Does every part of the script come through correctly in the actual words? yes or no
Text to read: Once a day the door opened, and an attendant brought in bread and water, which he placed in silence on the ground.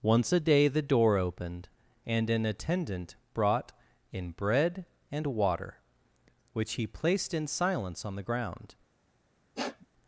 yes